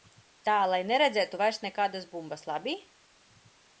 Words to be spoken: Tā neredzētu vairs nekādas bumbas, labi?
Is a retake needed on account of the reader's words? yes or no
yes